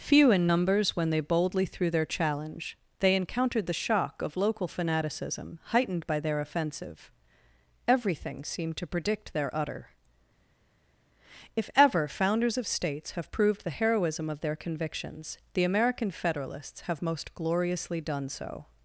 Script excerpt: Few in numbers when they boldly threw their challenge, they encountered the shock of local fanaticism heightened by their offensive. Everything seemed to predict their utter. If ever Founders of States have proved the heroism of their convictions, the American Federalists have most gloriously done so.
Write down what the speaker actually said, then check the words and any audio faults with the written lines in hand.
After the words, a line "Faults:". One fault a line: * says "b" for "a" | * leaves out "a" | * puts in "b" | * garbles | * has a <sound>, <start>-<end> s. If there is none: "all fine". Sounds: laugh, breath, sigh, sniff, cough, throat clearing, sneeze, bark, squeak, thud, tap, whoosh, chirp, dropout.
Few in numbers when they boldly threw their challenge, they encountered the shock of local fanaticism heightened by their offensive. Everything seemed to predict their utter. If ever Founders of States have proved the heroism of their convictions, the American Federalists have most gloriously done so.
Faults:
all fine